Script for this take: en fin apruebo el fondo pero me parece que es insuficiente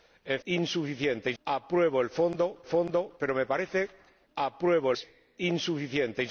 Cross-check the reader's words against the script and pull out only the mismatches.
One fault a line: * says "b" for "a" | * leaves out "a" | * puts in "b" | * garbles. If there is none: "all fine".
* says "insuficiente" for "fin"
* puts in "fondo"
* says "apruebo" for "que"